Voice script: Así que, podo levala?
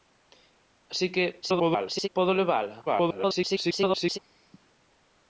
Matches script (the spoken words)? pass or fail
fail